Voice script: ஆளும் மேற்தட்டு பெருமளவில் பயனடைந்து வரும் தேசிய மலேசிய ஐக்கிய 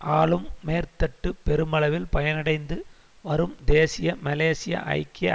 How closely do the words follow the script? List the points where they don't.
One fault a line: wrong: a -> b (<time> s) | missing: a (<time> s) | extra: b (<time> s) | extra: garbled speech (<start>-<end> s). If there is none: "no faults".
no faults